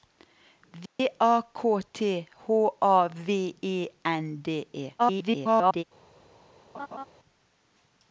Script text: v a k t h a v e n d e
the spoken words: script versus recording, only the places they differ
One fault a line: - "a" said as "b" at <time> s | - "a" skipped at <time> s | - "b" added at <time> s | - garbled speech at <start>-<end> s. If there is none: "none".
- garbled speech at 5.0-5.8 s